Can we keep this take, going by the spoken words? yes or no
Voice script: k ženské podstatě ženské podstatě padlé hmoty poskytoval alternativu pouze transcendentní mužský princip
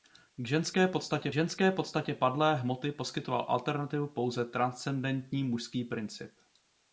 yes